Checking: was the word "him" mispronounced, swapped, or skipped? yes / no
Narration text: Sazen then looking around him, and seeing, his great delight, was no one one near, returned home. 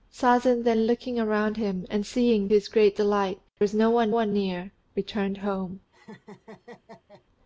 no